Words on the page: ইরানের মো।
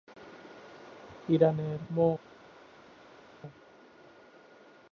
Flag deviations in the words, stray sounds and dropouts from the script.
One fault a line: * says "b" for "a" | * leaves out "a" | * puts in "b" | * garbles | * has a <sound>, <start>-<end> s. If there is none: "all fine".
all fine